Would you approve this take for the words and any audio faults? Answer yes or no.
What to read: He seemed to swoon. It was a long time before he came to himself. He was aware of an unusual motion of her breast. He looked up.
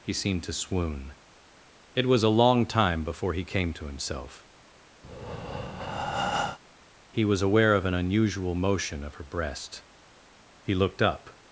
no